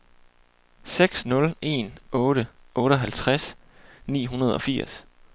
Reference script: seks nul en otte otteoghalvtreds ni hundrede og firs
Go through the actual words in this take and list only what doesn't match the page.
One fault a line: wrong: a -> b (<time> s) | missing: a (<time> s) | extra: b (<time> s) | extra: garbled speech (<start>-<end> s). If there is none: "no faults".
no faults